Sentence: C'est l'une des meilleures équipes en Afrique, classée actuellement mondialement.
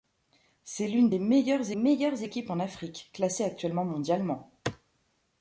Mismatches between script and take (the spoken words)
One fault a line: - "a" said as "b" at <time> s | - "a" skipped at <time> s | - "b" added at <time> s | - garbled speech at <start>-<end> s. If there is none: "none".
- "meilleures" added at 1.7 s